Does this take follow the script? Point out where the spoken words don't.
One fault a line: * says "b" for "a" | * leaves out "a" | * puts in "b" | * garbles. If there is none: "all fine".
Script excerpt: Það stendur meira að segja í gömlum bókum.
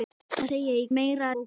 * leaves out "stendur meira að"
* says "meira" for "gömlum"